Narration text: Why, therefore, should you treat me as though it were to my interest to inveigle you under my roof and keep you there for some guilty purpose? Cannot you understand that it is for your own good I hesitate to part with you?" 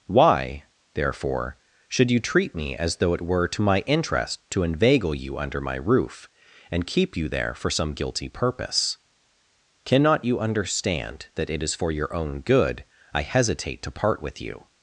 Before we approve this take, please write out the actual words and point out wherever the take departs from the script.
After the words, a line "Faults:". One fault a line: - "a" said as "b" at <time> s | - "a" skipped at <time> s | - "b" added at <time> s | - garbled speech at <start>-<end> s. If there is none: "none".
Why, therefore, should you treat me as though it were to my interest to inveigle you under my roof and keep you there for some guilty purpose? Cannot you understand that it is for your own good I hesitate to part with you?"
Faults:
none